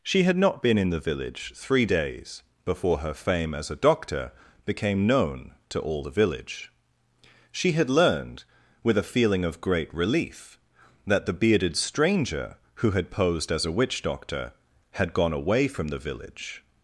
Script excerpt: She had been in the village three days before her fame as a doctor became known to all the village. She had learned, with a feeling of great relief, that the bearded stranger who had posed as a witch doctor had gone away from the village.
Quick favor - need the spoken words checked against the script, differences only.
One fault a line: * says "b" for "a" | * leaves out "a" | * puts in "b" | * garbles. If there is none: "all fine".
* puts in "not"